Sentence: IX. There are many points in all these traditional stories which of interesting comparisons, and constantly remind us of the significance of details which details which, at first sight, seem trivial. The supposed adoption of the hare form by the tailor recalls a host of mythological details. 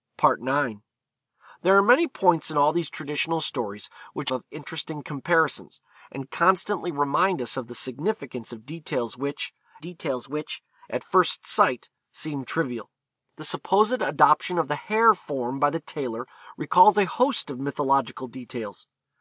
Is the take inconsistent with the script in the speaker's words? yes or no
no